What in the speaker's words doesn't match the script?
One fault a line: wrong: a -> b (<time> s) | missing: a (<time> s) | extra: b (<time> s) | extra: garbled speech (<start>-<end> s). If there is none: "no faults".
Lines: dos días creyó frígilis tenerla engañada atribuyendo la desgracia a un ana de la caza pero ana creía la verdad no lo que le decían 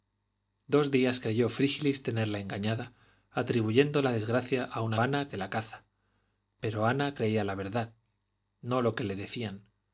no faults